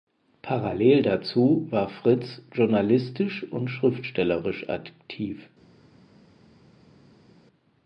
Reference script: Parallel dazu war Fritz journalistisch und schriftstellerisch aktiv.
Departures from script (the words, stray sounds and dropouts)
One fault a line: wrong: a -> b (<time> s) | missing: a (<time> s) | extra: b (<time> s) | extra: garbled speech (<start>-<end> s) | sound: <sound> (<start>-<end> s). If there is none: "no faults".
no faults